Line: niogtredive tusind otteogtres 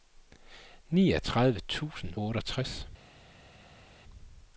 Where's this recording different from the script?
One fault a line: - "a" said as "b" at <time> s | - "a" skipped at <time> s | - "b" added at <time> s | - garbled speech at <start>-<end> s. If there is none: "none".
none